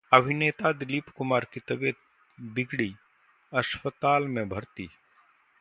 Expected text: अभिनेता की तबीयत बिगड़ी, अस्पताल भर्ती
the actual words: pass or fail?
fail